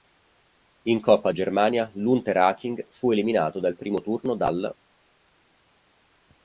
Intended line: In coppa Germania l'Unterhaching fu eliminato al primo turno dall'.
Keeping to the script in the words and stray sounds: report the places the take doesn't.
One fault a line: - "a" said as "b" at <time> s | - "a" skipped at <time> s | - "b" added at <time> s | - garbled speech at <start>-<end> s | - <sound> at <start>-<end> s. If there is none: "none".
none